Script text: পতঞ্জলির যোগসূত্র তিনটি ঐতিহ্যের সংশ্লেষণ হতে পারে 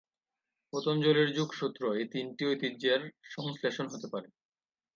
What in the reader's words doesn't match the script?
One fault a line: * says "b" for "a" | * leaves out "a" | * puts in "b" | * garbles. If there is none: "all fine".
* puts in "এই"